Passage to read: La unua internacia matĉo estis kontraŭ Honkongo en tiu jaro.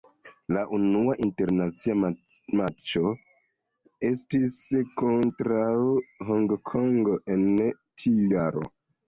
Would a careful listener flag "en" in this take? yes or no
no